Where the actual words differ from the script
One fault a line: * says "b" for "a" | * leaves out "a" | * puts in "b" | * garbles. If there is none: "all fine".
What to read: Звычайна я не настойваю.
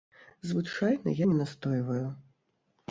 all fine